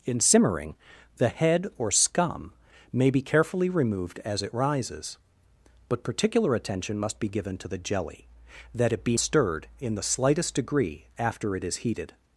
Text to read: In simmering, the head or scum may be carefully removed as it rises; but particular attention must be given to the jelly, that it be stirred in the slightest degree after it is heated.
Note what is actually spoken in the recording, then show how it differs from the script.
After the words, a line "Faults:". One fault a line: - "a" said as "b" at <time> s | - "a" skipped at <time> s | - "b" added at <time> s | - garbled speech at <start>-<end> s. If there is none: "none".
In simmering, the head or scum may be carefully removed as it rises; but particular attention must be given to the jelly, that it be stirred in the slightest degree after it is heated.
Faults:
none